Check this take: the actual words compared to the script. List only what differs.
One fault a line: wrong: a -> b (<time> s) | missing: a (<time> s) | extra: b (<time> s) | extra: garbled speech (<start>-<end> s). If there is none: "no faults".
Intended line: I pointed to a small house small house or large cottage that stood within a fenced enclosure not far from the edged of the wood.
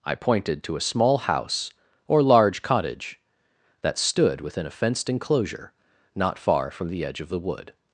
missing: small house (1.7 s)
wrong: edged -> edge (7.0 s)